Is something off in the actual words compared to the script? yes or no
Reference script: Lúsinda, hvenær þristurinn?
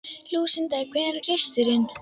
no